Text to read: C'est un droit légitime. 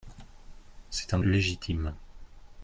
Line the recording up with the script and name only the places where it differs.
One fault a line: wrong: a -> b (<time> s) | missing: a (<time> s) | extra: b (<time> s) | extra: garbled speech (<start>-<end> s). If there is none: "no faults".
missing: droit (1.2 s)